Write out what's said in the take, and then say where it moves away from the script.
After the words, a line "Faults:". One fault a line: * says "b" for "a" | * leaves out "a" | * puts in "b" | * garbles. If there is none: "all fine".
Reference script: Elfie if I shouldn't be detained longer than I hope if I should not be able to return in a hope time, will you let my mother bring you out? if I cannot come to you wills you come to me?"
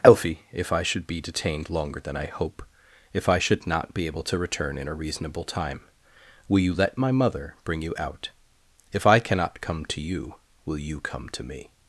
Elfie if I should be detained longer than I hope if I should not be able to return in a reasonable time, will you let my mother bring you out? if I cannot come to you will you come to me?"
Faults:
* says "should" for "shouldn't"
* says "reasonable" for "hope"
* says "will" for "wills"